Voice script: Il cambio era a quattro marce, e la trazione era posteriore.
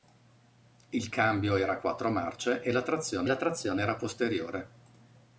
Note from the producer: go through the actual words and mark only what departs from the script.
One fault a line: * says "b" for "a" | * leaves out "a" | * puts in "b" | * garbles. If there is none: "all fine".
* puts in "la trazione"